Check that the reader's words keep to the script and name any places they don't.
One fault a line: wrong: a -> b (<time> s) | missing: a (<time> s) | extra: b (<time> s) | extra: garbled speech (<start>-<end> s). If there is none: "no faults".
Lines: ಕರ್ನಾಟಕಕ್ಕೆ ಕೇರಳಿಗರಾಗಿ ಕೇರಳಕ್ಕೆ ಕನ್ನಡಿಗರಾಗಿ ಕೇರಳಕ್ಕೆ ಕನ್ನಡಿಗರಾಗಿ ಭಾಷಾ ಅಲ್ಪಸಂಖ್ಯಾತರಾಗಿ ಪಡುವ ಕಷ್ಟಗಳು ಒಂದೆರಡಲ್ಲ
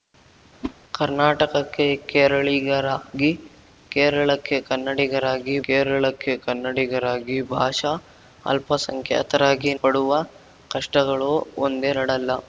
no faults